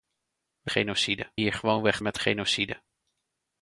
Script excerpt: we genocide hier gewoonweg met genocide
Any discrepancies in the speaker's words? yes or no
no